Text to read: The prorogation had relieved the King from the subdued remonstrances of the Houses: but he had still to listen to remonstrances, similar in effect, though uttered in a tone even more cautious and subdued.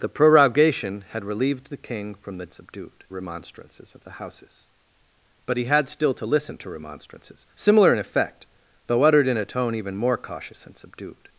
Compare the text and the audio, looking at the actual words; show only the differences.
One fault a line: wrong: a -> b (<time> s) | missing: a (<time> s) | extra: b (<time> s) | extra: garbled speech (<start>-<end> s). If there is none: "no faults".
no faults